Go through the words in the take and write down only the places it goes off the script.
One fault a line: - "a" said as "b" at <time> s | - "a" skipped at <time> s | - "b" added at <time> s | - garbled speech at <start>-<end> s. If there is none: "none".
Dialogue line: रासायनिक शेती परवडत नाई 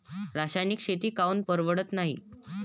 - "काऊन" added at 1.1 s